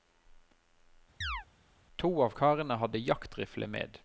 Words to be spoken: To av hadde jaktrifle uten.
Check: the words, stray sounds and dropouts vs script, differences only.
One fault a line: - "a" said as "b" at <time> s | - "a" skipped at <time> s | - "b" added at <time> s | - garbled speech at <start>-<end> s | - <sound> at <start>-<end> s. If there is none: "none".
- chirp at 1.2-1.5 s
- "karene" added at 2.3 s
- "uten" said as "med" at 3.7 s